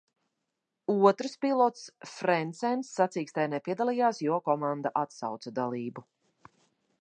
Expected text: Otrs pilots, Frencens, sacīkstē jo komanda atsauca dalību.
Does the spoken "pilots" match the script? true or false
true